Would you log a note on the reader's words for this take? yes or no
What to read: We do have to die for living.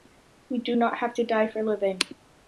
yes